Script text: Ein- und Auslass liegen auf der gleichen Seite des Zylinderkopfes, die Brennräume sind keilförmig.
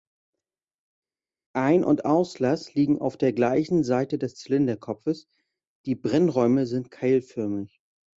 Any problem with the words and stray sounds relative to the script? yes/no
no